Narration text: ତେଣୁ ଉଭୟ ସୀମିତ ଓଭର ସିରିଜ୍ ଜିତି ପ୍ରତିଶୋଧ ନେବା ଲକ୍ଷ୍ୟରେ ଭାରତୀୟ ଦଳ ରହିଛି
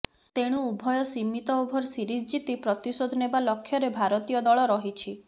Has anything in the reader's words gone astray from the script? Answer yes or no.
no